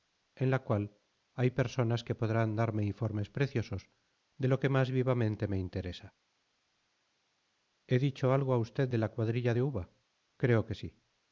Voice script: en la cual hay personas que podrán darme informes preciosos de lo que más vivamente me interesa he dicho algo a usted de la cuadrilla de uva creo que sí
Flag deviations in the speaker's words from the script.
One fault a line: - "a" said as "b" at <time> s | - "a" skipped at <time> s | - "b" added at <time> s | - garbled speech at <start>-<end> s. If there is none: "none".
none